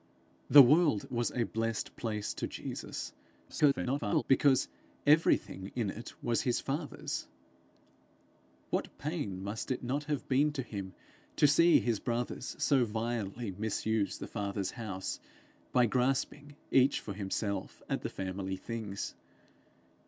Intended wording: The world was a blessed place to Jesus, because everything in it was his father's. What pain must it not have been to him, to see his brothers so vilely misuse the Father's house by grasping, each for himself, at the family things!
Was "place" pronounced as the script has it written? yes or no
yes